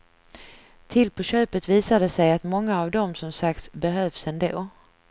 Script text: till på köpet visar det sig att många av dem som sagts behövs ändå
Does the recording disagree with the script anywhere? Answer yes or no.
no